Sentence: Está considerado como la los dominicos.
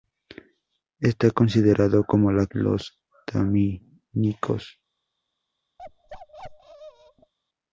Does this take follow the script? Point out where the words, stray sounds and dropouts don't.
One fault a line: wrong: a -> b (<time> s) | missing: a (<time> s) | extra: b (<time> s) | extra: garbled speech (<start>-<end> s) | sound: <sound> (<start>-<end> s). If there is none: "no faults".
sound: bark (5.8-7.3 s)